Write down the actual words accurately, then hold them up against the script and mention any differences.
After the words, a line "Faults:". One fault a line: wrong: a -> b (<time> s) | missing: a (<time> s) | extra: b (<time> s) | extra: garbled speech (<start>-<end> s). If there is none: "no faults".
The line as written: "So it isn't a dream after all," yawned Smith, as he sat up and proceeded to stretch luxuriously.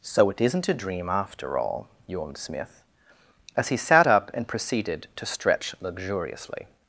"So it isn't a dream after all," yawned Smith, as he sat up and proceeded to stretch luxuriously.
Faults:
no faults